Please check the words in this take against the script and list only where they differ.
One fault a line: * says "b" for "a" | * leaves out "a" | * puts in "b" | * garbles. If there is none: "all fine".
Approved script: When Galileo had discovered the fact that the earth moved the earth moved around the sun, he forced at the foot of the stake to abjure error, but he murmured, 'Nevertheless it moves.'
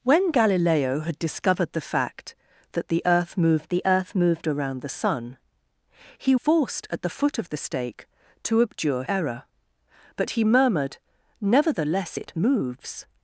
all fine